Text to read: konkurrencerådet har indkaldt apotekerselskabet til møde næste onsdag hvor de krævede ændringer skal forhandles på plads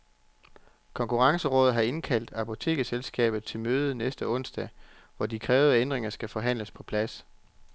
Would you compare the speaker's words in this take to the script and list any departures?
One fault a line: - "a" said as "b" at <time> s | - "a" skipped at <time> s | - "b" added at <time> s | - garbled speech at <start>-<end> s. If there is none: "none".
none